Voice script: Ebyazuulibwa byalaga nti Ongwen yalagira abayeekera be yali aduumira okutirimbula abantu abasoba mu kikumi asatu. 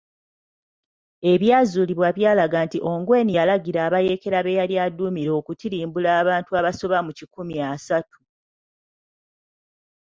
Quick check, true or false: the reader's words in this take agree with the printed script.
true